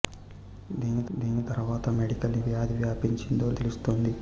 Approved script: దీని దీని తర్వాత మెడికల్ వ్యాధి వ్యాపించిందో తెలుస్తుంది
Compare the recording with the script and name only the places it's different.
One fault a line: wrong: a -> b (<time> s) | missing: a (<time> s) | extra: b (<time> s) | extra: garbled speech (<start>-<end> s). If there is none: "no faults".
no faults